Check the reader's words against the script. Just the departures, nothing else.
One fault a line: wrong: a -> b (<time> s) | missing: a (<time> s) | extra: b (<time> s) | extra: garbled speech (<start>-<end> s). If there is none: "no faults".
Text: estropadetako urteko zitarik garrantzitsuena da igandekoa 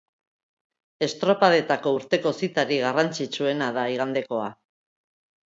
no faults